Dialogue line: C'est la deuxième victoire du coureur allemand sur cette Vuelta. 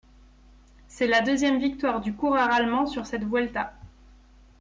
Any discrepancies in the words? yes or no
no